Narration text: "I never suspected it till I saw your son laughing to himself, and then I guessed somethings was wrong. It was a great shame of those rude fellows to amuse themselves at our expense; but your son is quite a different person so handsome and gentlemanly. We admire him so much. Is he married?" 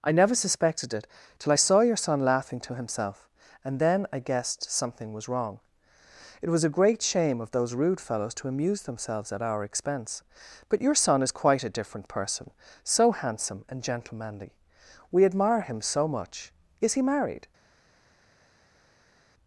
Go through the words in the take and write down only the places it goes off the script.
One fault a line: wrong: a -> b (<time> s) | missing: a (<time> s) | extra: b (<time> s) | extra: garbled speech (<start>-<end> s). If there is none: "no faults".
wrong: somethings -> something (4.7 s)